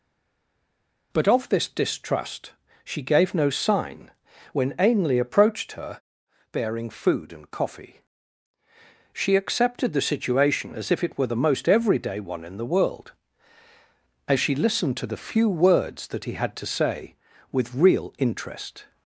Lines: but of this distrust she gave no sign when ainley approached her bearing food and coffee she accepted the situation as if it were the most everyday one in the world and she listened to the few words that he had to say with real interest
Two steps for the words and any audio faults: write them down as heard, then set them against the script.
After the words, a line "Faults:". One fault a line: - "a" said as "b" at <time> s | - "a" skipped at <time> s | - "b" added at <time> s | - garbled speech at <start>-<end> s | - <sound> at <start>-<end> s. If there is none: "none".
but of this distrust she gave no sign when ainley approached her bearing food and coffee she accepted the situation as if it were the most everyday one in the world as she listened to the few words that he had to say with real interest
Faults:
- "and" said as "as" at 14.3 s